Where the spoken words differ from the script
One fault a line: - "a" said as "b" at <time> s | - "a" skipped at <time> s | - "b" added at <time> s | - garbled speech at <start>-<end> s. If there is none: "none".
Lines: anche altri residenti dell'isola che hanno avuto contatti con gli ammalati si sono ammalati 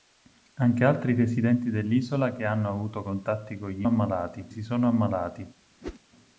none